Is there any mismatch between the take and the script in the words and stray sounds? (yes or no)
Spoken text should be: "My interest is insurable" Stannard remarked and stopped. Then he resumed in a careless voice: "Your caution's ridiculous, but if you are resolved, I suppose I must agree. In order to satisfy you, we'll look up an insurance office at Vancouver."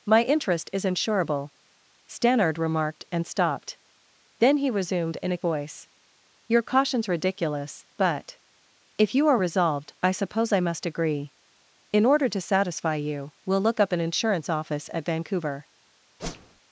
yes